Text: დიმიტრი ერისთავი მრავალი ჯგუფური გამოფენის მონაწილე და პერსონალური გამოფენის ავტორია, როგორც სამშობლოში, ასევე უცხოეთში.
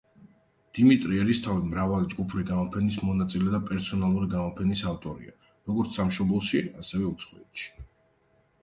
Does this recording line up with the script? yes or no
yes